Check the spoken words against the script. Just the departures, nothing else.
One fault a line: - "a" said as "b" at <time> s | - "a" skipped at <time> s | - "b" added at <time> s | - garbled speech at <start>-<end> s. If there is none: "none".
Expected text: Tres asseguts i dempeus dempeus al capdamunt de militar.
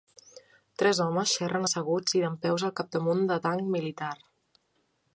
- "homes xerren" added at 1.1 s
- "dempeus" skipped at 2.7 s
- "tanc" added at 3.5 s